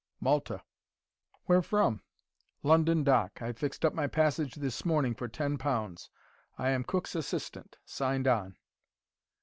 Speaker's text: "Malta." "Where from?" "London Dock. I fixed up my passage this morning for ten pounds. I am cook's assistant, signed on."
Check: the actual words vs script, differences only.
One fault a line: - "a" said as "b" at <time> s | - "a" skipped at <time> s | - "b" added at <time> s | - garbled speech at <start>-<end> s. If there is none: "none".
none